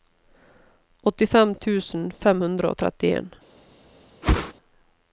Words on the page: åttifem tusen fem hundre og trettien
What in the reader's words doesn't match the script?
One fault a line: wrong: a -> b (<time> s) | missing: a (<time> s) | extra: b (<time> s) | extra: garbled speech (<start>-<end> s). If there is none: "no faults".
no faults